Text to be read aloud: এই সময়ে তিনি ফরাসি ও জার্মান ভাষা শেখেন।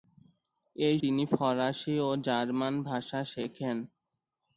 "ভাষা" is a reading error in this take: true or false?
false